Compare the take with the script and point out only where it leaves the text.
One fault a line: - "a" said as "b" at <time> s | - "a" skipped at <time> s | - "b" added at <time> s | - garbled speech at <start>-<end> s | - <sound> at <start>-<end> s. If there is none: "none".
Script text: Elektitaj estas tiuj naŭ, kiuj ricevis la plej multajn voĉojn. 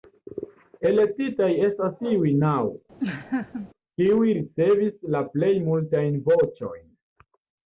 - laugh at 3.0-3.7 s